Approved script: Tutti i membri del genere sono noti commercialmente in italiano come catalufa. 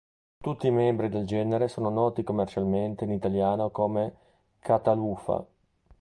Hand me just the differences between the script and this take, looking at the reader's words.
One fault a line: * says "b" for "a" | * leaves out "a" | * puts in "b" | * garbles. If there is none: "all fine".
all fine